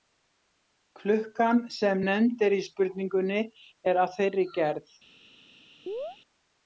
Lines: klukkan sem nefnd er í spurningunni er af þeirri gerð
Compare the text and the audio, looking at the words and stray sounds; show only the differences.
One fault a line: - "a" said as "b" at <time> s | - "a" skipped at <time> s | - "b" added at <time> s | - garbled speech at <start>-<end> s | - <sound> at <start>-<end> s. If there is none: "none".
- chirp at 5.9-6.2 s